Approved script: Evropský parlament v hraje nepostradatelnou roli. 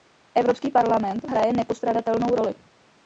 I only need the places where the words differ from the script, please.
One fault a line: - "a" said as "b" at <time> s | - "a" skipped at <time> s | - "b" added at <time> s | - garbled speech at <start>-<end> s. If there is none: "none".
none